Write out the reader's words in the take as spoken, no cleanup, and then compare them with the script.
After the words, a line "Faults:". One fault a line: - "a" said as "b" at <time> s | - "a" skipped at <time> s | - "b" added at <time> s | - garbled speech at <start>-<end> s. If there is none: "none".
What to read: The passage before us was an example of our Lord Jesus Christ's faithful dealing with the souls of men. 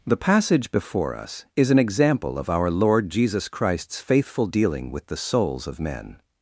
The passage before us is an example of our Lord Jesus Christ's faithful dealing with the souls of men.
Faults:
- "was" said as "is" at 1.6 s